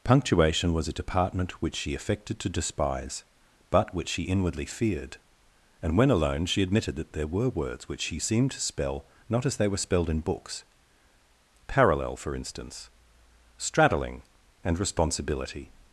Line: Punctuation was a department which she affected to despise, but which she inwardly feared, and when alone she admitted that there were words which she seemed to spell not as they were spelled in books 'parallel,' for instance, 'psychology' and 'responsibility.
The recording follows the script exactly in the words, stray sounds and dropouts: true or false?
false